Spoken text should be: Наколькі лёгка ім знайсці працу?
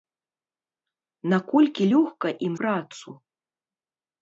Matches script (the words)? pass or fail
fail